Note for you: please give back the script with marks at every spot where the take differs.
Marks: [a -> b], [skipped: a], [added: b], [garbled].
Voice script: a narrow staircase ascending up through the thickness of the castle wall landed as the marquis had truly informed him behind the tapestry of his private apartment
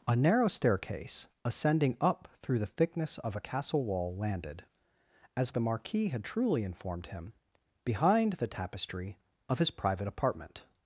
a narrow staircase ascending up through the thickness of [the -> a] castle wall landed as the marquis had truly informed him behind the tapestry of his private apartment